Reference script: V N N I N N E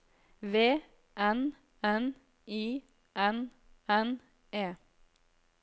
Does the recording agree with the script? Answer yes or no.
yes